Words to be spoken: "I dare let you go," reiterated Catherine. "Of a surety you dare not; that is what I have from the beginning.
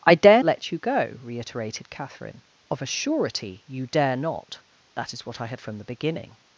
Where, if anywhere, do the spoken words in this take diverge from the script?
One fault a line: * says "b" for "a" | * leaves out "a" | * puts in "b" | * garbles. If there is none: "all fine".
all fine